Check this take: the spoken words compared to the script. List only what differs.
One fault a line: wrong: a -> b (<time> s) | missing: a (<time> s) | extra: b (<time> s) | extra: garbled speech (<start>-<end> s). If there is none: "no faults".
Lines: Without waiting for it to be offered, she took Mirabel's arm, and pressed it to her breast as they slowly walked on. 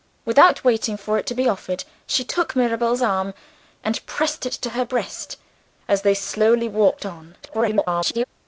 extra: garbled speech (7.4-8.2 s)